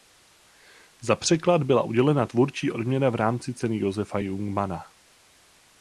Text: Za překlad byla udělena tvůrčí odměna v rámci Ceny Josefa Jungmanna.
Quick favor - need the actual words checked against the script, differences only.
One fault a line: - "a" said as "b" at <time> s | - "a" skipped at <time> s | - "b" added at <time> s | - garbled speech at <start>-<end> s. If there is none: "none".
none